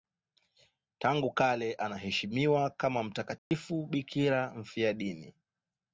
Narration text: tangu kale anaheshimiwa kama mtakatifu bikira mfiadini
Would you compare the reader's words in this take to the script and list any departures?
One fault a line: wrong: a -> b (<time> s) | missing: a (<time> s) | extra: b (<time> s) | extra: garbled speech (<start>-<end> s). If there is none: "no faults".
no faults